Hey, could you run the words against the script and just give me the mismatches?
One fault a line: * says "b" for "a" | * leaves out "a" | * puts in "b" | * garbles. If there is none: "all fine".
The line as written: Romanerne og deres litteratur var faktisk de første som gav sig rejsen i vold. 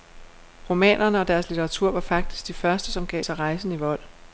all fine